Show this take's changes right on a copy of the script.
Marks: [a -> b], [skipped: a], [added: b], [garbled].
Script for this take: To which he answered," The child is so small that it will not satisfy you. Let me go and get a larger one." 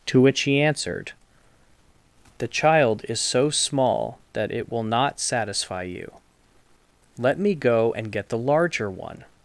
To which he answered," The child is so small that it will not satisfy you. Let me go and get [a -> the] larger one."